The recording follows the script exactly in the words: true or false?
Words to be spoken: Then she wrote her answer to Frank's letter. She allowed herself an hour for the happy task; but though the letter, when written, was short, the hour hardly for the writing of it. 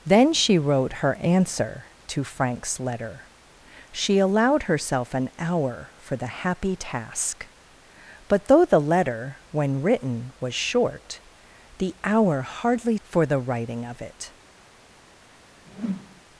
true